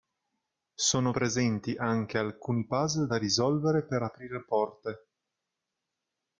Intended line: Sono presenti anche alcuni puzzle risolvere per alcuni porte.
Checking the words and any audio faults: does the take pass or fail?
fail